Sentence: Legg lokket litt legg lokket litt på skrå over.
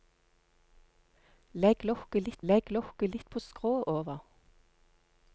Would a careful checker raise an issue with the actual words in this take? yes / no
no